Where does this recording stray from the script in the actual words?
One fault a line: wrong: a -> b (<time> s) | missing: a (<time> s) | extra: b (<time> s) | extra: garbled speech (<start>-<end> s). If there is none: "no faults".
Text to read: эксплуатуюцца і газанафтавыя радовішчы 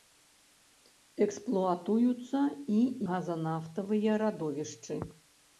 no faults